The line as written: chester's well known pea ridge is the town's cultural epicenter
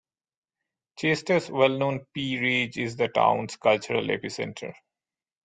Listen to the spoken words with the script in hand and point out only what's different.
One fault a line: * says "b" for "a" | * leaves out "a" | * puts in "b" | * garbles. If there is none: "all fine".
all fine